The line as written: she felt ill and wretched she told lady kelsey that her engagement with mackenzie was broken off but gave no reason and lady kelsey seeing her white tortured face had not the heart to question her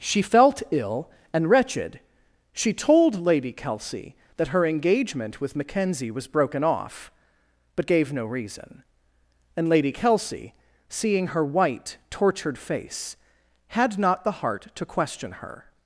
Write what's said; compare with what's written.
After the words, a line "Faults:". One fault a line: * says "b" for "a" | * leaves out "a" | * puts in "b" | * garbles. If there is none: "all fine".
she felt ill and wretched she told lady kelsey that her engagement with mackenzie was broken off but gave no reason and lady kelsey seeing her white tortured face had not the heart to question her
Faults:
all fine